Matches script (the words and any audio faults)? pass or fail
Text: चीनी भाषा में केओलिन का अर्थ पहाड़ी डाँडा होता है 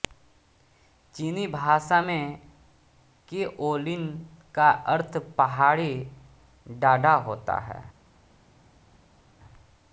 pass